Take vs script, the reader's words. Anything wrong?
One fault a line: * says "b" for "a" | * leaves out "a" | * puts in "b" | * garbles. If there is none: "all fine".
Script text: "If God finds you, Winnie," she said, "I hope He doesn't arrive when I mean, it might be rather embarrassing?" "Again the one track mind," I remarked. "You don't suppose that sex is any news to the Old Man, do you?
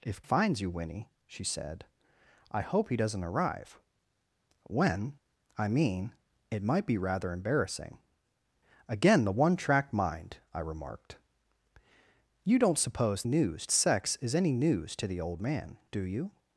* leaves out "God"
* says "news" for "that"